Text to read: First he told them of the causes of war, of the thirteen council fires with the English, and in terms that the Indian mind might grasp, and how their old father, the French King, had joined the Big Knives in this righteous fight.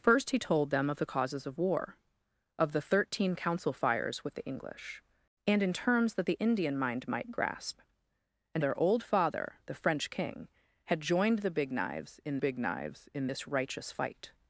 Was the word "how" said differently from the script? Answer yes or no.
yes